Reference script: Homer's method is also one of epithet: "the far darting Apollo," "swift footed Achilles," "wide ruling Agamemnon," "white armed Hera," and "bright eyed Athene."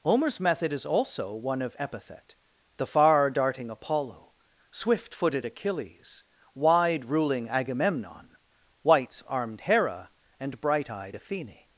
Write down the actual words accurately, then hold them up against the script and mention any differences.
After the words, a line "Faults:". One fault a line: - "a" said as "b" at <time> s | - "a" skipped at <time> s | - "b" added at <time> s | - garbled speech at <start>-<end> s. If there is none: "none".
Homer's method is also one of epithet: "the far darting Apollo," "swift footed Achilles," "wide ruling Agamemnon," "whites armed Hera," and "bright eyed Athene."
Faults:
- "white" said as "whites" at 8.8 s